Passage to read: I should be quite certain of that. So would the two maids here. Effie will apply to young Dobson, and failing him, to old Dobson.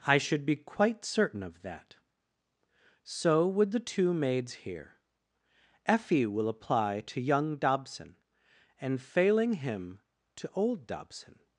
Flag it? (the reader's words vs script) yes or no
no